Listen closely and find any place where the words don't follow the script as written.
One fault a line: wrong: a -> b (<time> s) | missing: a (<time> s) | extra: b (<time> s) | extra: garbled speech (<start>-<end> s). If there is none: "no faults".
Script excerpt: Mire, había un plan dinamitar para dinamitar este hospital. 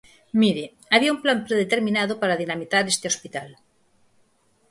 wrong: dinamitar -> predeterminado (1.5 s)